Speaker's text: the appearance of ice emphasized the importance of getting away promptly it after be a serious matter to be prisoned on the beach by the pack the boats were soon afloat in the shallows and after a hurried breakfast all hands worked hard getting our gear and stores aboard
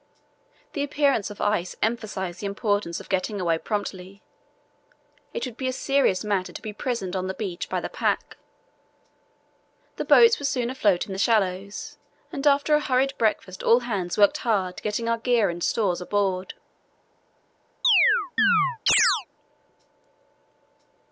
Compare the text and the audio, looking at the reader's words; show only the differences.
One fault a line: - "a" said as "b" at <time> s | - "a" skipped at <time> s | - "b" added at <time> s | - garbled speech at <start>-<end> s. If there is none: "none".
- "after" said as "would" at 5.5 s